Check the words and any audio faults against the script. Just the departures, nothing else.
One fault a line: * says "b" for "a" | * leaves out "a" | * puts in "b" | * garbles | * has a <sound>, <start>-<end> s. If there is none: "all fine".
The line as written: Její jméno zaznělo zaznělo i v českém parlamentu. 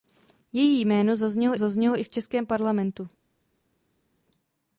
all fine